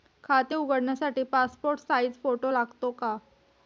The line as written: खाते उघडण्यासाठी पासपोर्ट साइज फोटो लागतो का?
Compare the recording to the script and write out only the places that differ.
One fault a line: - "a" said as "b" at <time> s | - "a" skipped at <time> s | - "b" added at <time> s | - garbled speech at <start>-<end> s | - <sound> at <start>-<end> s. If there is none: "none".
none